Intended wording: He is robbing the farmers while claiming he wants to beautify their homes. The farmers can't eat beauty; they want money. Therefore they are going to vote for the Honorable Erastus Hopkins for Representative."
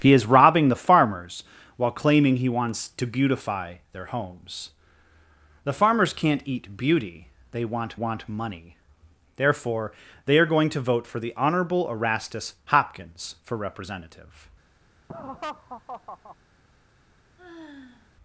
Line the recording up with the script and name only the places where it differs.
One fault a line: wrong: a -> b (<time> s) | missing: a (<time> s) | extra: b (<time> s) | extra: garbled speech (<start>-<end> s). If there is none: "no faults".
extra: want (7.9 s)